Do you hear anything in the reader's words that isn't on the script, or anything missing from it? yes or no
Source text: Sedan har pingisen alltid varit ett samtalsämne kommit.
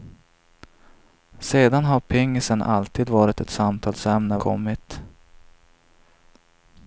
no